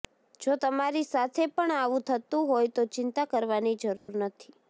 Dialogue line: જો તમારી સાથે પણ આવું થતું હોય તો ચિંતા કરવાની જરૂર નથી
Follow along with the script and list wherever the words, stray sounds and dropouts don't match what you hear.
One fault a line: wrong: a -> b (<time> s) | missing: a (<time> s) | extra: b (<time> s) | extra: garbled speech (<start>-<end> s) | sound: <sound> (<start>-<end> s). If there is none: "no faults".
sound: dropout (4.0-4.1 s)